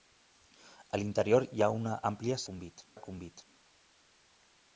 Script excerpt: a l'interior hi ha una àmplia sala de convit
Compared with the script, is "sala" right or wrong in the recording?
wrong